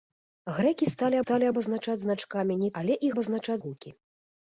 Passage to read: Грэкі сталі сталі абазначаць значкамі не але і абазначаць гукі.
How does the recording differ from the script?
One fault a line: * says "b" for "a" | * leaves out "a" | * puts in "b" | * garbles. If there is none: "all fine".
all fine